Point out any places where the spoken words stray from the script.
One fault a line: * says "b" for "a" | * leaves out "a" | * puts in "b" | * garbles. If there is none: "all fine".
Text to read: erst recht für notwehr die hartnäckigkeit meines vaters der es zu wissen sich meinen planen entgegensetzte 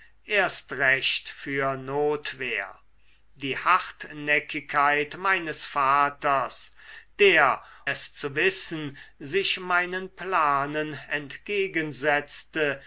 all fine